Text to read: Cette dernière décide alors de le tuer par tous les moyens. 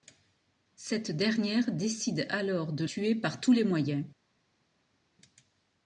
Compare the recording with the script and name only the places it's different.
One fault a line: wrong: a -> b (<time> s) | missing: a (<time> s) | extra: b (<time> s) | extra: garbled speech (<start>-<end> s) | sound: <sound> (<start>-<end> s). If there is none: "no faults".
missing: le (2.9 s)